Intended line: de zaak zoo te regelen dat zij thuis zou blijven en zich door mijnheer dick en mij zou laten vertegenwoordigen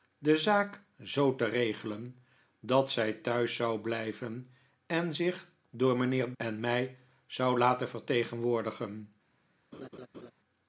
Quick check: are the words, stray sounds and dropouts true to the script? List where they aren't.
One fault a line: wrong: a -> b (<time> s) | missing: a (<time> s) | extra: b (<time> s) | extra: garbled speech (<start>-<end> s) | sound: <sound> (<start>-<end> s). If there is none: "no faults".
missing: dick (6.3 s)
sound: laugh (9.7-10.3 s)